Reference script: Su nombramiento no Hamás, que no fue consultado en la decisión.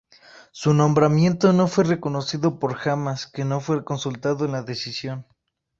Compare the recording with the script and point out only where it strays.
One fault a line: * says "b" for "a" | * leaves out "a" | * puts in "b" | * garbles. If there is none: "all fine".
* puts in "fue reconocido por"